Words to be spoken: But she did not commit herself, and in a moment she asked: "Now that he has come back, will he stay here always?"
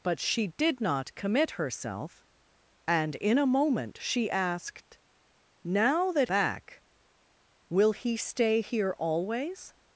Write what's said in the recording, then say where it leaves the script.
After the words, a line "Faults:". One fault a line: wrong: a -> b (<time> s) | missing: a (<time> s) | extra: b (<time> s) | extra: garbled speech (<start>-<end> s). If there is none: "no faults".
But she did not commit herself, and in a moment she asked: "Now that back, will he stay here always?"
Faults:
missing: he has come (6.3 s)